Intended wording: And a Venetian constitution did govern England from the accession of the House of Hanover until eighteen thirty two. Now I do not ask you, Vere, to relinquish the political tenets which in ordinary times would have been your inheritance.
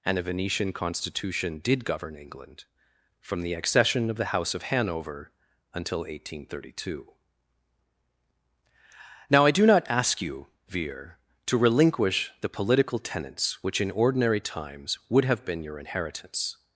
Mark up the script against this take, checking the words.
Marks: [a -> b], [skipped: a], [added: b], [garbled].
And a Venetian constitution did govern England from the accession of the House of Hanover until eighteen thirty two. Now I do not ask you, Vere, to relinquish the political tenets which in ordinary times would have been your inheritance.